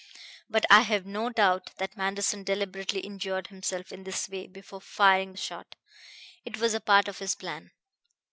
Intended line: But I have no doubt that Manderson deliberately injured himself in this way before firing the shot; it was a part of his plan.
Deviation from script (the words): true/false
false